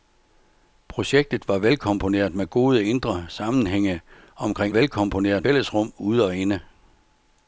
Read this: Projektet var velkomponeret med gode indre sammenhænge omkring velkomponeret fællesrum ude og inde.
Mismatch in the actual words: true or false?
false